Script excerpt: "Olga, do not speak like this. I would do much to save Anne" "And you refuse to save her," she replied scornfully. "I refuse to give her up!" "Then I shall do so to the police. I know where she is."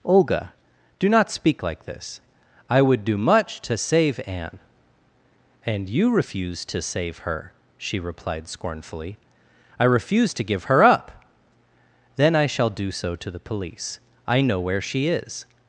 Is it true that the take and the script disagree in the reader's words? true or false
false